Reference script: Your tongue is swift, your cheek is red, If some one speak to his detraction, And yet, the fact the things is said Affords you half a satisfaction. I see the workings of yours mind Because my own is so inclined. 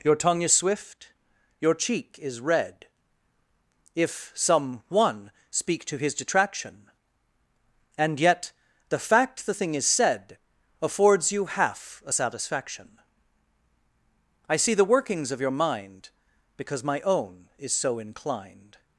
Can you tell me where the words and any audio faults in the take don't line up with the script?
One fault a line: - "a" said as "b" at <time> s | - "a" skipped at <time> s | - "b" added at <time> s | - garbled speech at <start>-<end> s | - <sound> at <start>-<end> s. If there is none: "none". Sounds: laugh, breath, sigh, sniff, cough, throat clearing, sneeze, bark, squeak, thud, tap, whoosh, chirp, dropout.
- "things" said as "thing" at 9.5 s
- "yours" said as "your" at 15.4 s